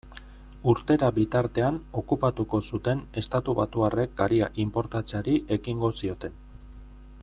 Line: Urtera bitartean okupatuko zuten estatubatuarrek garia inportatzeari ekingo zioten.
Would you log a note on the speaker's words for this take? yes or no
no